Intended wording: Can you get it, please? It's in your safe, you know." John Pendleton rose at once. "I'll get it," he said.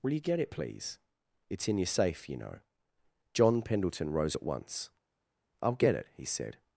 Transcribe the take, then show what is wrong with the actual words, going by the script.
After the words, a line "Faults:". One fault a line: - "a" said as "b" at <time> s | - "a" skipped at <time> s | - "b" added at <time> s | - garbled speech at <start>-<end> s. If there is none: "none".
Will you get it, please? It's in your safe, you know." John Pendleton rose at once. "I'll get it," he said.
Faults:
- "Can" said as "Will" at 0.0 s